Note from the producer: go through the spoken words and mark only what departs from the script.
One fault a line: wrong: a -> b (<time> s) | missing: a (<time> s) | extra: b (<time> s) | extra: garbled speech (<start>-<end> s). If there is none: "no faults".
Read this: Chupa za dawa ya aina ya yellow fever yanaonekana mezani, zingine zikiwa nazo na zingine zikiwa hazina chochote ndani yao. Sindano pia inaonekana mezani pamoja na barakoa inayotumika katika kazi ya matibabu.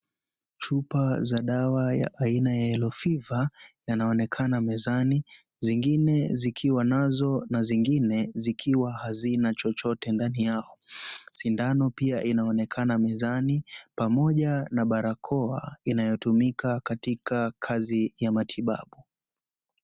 no faults